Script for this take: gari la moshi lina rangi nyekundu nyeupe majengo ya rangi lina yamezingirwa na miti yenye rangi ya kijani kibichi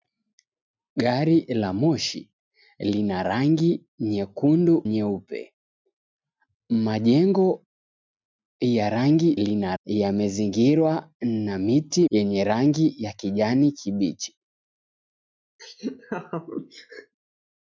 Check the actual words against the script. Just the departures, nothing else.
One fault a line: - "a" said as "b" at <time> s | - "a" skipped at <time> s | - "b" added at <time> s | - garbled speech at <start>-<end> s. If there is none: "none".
none